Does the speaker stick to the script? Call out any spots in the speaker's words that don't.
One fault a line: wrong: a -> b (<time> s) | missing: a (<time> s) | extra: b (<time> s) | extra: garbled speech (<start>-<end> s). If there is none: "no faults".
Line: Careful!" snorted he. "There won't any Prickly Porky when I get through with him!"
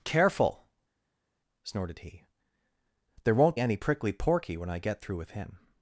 no faults